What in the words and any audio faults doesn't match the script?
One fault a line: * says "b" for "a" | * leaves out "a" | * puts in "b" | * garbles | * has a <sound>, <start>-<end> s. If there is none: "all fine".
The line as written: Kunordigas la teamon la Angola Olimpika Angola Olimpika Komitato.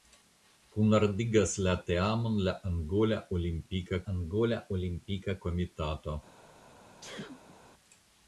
* has a sneeze, 7.0-7.6 s